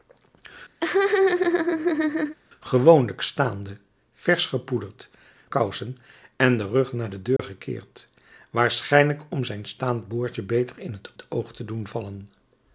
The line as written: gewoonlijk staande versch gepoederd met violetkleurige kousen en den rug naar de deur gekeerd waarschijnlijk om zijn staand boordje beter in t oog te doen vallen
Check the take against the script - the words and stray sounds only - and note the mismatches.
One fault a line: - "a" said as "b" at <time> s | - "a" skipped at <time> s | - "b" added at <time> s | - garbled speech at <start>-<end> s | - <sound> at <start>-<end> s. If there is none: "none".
- laugh at 0.8-2.4 s
- "met violetkleurige" skipped at 5.1 s
- dropout at 7.4-7.4 s
- "t" added at 11.2 s